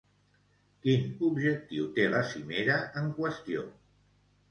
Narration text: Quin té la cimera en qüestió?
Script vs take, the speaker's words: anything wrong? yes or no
yes